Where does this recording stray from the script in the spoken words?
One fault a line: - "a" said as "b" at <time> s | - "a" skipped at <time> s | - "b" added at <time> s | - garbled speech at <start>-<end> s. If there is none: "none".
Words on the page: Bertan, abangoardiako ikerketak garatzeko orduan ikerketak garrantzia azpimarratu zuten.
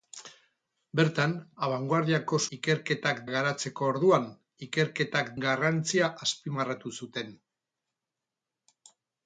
none